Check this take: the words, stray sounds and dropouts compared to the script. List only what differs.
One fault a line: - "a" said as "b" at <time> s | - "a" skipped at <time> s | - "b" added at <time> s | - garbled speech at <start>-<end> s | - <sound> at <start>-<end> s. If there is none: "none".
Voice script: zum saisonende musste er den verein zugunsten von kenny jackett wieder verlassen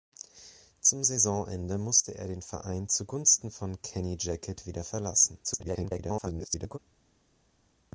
- garbled speech at 5.4-6.8 s